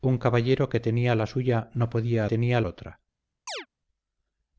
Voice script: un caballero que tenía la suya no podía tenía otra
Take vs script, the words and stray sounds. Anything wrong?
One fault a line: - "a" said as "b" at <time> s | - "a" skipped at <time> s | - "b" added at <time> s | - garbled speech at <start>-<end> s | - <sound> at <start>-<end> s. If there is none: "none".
- chirp at 3.5-3.7 s